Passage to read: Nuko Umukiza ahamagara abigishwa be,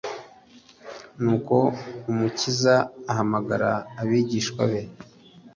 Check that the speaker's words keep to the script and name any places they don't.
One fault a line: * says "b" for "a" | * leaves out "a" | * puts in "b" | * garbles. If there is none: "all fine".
all fine